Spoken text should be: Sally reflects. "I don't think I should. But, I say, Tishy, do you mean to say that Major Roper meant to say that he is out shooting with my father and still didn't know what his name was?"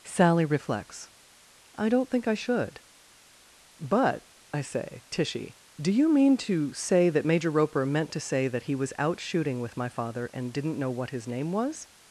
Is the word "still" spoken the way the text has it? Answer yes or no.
no